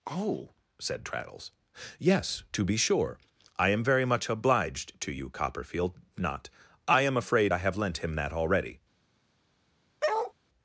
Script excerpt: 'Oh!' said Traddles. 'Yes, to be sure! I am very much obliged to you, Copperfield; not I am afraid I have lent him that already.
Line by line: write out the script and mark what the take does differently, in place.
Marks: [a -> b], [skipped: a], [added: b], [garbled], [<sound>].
'Oh!' said Traddles. 'Yes, to be sure! I am very much obliged to you, Copperfield; not I am afraid I have lent him that already. [bark]